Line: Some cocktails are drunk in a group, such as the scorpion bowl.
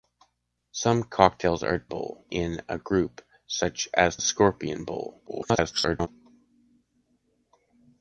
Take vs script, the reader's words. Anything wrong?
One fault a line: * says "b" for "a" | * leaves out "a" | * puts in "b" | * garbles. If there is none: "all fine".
* says "bowl" for "drunk"
* leaves out "the"
* garbles